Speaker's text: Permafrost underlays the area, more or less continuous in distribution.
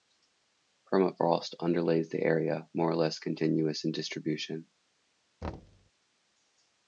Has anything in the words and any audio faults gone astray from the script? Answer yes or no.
yes